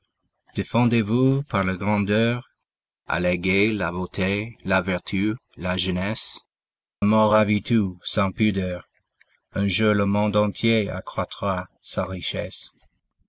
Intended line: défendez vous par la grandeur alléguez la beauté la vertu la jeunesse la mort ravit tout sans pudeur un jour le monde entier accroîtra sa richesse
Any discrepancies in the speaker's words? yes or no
yes